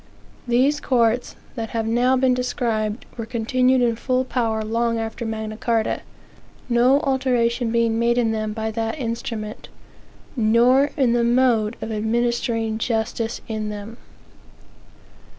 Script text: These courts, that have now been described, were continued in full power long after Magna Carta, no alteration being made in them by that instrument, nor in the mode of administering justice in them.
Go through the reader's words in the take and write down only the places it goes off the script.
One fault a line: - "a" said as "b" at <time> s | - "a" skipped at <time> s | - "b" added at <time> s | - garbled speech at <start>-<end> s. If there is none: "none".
none